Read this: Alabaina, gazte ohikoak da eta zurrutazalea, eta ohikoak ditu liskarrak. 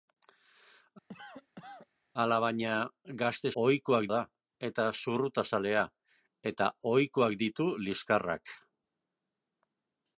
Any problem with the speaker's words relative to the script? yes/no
no